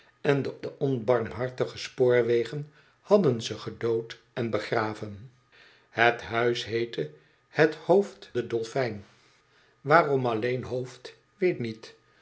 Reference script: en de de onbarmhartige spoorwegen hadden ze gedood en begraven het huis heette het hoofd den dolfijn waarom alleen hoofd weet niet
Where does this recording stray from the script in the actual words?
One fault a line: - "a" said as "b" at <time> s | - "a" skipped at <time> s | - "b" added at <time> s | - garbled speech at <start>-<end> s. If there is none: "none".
none